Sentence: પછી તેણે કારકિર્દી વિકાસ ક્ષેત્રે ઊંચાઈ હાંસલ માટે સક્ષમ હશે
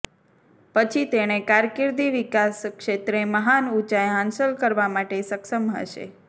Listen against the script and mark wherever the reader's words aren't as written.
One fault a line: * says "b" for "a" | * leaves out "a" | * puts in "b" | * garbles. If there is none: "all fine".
* puts in "મહાન"
* puts in "કરવા"